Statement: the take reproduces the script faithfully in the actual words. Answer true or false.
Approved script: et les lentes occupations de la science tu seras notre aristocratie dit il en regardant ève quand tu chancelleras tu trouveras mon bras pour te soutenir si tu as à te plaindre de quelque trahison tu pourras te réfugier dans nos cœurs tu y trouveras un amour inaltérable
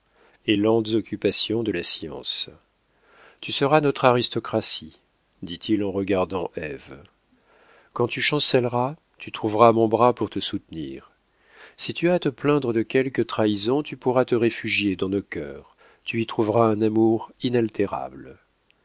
false